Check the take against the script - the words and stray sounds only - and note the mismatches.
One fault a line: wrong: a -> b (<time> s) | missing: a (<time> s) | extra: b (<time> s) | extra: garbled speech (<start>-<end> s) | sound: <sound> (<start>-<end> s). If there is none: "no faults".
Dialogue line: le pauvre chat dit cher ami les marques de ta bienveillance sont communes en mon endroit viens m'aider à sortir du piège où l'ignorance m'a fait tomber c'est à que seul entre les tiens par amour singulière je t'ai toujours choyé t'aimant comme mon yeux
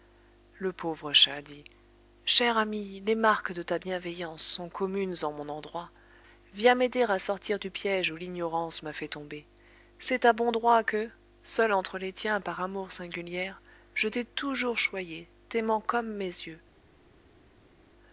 extra: bon droit (10.3 s)
wrong: mon -> mes (16.1 s)